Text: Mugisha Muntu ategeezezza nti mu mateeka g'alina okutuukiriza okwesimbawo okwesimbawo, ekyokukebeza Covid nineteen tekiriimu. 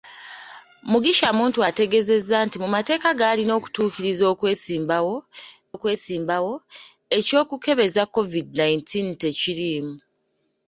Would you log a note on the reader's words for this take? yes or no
no